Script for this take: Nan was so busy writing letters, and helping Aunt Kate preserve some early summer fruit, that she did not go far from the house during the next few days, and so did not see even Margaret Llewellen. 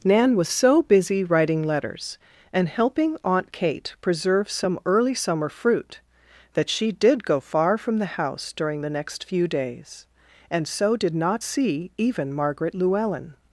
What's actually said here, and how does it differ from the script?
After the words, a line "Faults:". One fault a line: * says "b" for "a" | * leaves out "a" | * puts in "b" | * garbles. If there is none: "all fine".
Nan was so busy writing letters, and helping Aunt Kate preserve some early summer fruit, that she did go far from the house during the next few days, and so did not see even Margaret Llewellen.
Faults:
* leaves out "not"